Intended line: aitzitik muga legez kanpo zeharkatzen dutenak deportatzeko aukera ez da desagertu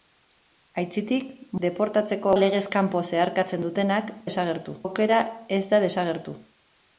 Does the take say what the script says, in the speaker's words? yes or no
no